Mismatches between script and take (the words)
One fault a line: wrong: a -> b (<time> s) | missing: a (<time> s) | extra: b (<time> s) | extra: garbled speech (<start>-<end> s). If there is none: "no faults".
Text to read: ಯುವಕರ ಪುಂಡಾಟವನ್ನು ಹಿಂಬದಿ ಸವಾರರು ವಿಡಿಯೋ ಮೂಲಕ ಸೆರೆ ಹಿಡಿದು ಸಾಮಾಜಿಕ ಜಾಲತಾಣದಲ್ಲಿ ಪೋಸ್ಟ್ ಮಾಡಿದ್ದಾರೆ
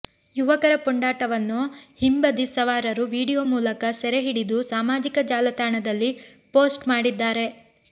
no faults